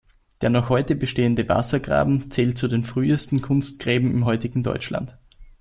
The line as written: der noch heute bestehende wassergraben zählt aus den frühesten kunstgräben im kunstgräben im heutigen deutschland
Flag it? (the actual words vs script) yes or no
yes